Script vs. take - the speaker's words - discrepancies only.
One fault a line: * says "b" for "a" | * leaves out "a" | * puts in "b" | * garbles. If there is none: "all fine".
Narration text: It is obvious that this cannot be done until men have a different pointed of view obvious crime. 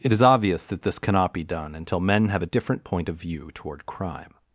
* says "point" for "pointed"
* says "toward" for "obvious"